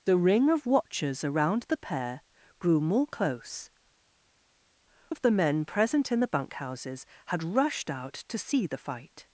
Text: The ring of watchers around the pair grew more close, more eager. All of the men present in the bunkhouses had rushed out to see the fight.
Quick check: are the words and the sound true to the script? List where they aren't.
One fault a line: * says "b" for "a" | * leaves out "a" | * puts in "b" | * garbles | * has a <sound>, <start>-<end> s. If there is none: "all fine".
* leaves out "more eager All"